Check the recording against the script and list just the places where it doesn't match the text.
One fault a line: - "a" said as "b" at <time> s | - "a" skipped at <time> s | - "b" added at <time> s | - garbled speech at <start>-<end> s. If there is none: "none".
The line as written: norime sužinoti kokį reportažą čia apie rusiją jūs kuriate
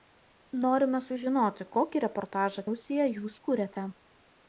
- "čia apie" skipped at 2.6 s